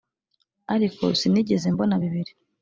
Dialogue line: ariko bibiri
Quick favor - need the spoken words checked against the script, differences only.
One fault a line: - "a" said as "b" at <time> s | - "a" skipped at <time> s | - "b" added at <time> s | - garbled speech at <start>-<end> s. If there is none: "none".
- "sinigeze mbona" added at 1.2 s